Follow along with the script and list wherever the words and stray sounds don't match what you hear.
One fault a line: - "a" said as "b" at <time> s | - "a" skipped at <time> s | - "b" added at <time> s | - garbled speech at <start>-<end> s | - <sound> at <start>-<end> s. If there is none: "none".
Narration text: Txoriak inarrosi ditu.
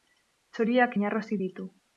none